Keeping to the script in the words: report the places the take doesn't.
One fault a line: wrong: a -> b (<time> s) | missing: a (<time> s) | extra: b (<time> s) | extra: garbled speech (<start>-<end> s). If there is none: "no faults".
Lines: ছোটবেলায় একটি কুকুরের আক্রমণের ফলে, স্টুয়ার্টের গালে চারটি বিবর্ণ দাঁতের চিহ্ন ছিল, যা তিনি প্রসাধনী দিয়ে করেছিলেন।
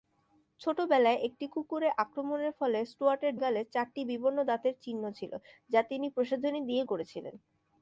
no faults